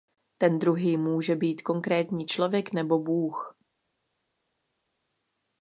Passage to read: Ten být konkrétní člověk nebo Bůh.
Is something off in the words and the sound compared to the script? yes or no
yes